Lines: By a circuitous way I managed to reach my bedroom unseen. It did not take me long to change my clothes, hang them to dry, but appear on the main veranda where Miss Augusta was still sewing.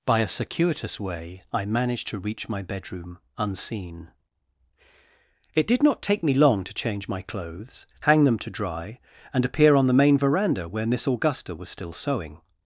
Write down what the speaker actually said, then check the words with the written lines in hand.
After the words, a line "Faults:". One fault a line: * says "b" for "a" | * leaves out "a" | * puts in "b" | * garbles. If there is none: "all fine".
By a circuitous way I managed to reach my bedroom unseen. It did not take me long to change my clothes, hang them to dry, and appear on the main veranda where Miss Augusta was still sewing.
Faults:
* says "and" for "but"